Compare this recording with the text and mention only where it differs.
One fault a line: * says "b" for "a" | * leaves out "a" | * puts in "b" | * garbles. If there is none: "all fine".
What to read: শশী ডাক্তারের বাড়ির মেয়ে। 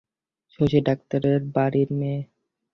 all fine